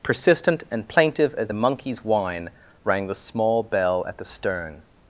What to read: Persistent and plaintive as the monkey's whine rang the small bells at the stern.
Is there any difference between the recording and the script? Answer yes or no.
yes